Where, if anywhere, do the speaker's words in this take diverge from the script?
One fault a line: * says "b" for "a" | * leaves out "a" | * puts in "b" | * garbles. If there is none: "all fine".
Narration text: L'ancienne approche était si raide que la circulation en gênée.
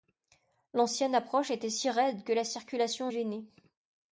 all fine